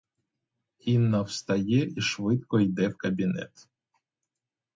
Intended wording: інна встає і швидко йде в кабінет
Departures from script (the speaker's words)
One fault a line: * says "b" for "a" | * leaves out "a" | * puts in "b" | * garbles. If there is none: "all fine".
all fine